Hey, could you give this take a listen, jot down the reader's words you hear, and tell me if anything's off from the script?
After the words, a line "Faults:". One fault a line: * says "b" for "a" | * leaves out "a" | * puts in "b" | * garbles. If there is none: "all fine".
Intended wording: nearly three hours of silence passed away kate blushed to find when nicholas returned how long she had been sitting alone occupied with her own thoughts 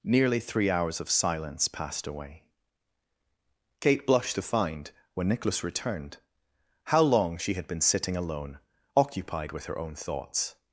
nearly three hours of silence passed away kate blushed to find when nicholas returned how long she had been sitting alone occupied with her own thoughts
Faults:
all fine